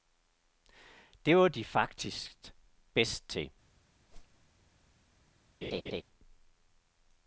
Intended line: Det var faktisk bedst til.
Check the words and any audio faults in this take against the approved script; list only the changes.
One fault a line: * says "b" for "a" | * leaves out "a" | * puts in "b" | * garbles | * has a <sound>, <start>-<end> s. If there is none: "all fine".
* puts in "de"
* has a whoosh, 4.1-4.5 s
* has a laugh, 5.6-6.0 s